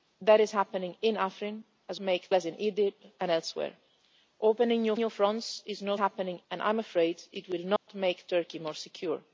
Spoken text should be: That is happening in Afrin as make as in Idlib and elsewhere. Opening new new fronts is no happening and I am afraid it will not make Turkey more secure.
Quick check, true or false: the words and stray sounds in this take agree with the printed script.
false